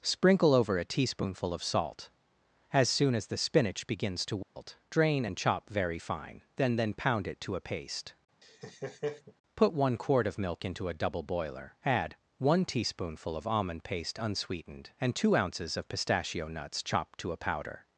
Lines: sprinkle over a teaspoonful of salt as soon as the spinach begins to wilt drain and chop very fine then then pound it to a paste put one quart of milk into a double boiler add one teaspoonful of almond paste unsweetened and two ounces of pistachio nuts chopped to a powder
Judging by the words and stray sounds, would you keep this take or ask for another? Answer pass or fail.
fail